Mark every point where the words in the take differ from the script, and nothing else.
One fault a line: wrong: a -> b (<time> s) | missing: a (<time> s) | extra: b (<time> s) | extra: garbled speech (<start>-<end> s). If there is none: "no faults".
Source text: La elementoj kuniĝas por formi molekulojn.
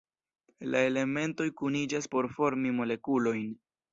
no faults